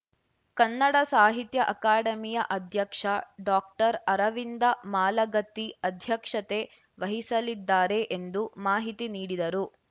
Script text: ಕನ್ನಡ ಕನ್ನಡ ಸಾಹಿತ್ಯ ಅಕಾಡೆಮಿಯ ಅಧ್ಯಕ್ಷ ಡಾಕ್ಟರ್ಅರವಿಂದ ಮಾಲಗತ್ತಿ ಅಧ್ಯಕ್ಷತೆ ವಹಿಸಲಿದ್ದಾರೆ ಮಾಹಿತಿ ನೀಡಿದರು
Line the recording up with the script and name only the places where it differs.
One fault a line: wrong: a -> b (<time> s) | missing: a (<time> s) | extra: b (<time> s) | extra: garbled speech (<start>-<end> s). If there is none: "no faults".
missing: ಕನ್ನಡ (0.9 s)
extra: ಎಂದು (8.2 s)